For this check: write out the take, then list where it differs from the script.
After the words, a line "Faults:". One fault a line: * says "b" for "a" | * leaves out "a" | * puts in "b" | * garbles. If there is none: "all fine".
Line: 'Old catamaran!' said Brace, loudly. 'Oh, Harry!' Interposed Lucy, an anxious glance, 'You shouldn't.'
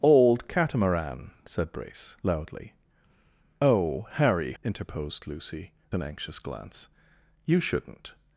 'Old catamaran!' said Brace, loudly. 'Oh, Harry!' Interposed Lucy, an anxious glance, 'You shouldn't.'
Faults:
all fine